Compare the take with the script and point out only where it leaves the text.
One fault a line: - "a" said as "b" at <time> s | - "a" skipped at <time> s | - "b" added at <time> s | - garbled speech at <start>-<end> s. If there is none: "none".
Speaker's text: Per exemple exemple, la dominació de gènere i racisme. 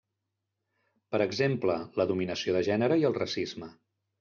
- "exemple" skipped at 1.8 s
- "el" added at 3.1 s